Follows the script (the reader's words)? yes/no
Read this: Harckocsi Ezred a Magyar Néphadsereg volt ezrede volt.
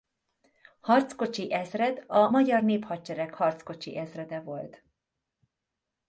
no